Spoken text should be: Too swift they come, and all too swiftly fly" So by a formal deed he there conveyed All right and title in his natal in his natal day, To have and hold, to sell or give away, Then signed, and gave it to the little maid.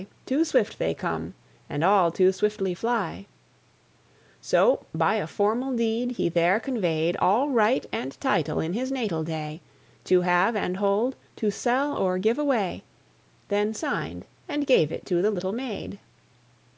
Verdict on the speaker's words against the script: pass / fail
fail